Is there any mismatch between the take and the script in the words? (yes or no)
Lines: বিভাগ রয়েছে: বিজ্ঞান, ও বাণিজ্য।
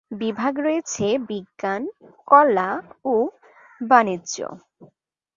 yes